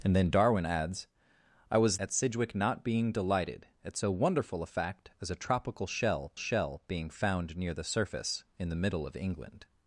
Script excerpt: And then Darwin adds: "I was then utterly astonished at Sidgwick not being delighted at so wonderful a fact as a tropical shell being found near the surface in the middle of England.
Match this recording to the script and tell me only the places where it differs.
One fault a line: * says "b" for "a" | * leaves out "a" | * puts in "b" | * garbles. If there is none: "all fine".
* leaves out "then utterly astonished"
* puts in "shell"